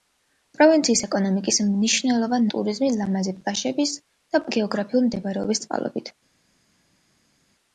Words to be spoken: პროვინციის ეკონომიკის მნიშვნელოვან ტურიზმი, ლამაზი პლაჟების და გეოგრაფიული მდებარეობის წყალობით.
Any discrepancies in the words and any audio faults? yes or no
no